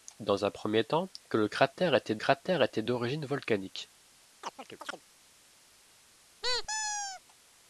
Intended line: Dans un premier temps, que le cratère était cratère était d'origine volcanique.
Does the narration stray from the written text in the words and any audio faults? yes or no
yes